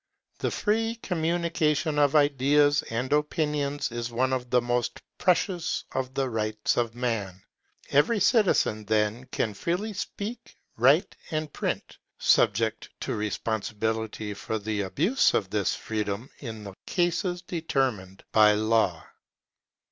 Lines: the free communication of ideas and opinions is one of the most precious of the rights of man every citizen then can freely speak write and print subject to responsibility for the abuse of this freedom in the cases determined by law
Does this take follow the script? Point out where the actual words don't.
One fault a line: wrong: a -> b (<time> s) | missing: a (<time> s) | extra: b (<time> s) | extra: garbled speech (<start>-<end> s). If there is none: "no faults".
no faults